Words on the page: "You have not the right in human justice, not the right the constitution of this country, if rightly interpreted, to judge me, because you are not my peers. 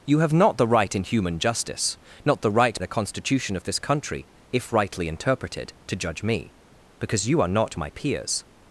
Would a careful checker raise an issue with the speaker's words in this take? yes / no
no